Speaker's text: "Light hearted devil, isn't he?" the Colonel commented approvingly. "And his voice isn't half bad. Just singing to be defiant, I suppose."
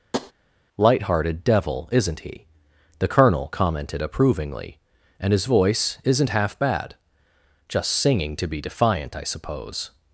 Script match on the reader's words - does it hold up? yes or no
yes